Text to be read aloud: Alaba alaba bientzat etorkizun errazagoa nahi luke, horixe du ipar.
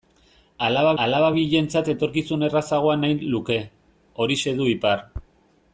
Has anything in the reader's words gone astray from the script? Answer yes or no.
no